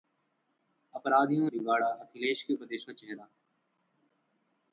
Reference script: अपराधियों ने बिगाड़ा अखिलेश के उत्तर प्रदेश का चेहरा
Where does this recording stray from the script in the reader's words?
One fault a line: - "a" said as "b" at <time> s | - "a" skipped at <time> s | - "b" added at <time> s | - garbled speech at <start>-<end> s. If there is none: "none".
- "ने" skipped at 1.5 s
- "उत्तर" skipped at 2.5 s